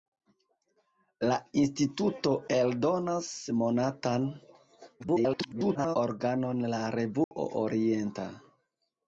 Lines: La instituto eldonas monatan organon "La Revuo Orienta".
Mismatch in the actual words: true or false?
true